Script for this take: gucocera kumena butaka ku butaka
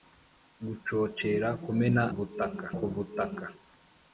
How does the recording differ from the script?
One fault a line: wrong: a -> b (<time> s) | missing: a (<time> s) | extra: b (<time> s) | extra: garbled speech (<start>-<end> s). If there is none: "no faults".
no faults